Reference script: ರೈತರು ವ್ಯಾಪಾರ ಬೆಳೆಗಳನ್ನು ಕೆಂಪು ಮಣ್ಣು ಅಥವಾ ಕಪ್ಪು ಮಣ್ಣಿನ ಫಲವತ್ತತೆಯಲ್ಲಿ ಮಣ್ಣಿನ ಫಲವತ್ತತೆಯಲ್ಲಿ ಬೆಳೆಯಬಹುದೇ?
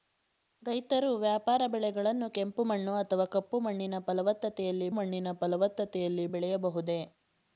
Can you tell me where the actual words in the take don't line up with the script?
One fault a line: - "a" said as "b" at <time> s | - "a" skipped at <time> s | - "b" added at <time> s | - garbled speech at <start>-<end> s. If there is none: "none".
none